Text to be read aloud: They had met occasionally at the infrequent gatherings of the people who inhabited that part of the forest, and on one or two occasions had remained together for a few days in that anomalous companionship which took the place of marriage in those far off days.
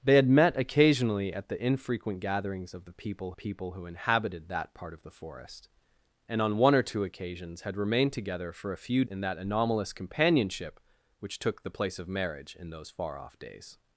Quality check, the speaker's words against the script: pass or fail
fail